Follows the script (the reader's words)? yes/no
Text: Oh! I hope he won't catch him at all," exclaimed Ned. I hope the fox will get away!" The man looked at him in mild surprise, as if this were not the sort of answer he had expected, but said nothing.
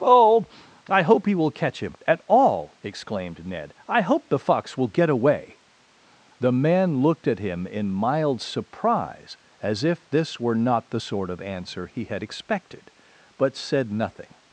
no